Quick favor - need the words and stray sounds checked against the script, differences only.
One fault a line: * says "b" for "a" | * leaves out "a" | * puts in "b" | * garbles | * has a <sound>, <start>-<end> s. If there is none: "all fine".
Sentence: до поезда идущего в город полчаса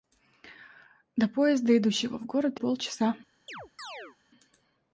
* has a chirp, 3.5-4.2 s